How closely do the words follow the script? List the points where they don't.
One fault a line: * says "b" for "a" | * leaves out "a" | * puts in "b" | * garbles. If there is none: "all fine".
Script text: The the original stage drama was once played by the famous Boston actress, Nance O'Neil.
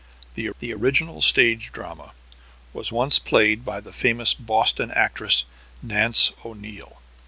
all fine